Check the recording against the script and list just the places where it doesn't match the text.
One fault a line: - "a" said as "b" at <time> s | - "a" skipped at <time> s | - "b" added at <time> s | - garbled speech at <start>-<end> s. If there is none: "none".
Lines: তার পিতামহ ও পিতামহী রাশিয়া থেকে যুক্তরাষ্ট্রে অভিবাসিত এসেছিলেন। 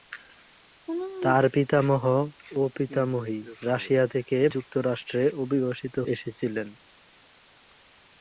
none